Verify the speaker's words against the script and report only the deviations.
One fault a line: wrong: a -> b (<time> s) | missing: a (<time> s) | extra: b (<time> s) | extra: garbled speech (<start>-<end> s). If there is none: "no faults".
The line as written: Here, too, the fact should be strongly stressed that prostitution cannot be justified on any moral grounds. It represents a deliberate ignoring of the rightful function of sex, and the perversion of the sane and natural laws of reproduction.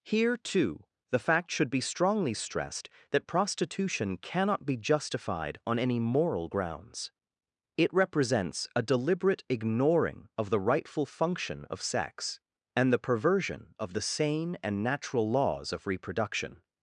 no faults